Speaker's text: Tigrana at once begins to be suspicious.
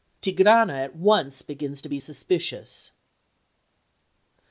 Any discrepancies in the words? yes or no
no